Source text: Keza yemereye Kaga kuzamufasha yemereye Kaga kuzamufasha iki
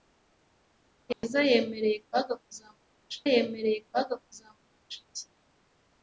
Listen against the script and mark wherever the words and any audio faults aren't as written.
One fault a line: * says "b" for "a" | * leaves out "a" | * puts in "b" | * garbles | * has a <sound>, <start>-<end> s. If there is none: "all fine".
* has a dropout, 1.1-1.2 s